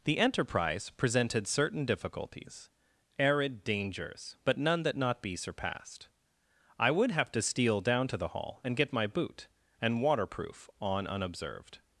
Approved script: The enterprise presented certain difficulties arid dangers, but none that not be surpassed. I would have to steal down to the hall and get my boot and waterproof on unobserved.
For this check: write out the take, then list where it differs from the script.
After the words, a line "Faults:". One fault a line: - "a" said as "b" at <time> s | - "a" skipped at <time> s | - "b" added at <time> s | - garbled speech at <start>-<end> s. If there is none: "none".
The enterprise presented certain difficulties arid dangers, but none that not be surpassed. I would have to steal down to the hall and get my boot and waterproof on unobserved.
Faults:
none